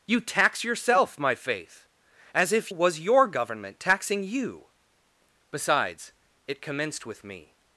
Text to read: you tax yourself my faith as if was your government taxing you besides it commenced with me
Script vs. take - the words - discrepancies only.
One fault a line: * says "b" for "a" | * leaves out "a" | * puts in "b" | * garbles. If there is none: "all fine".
all fine